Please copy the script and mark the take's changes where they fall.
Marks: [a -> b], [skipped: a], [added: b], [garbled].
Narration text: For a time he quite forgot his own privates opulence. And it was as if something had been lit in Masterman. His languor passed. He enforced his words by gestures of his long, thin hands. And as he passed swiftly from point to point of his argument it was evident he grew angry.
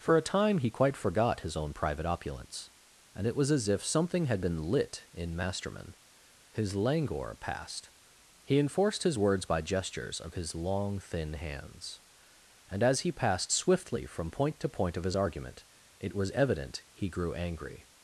For a time he quite forgot his own [privates -> private] opulence. And it was as if something had been lit in Masterman. His languor passed. He enforced his words by gestures of his long, thin hands. And as he passed swiftly from point to point of his argument it was evident he grew angry.